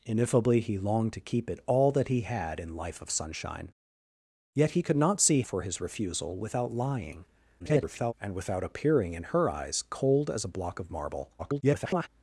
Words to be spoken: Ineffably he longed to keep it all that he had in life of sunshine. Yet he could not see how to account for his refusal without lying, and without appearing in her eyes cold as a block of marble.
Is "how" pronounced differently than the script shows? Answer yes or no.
yes